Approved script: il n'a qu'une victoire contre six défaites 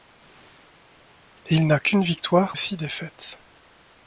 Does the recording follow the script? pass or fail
fail